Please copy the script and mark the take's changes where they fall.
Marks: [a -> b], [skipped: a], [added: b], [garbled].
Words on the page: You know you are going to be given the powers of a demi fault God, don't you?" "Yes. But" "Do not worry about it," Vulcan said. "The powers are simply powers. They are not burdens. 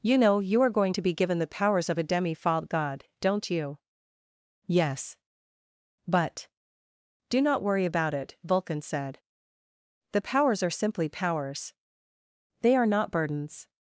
You know you are going to be given the powers of a demi fault God, don't you?" "Yes. But" "Do not worry about it," Vulcan said. "The powers are simply powers. They are not burdens.